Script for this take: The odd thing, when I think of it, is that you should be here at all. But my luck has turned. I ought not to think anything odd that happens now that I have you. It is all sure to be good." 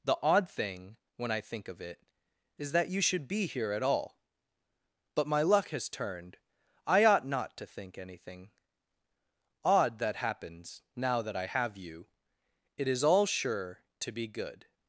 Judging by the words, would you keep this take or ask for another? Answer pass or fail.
pass